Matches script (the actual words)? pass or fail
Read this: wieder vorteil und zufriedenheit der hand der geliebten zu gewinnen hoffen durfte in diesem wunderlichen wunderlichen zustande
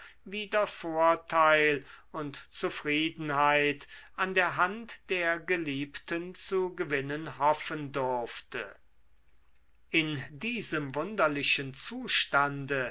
fail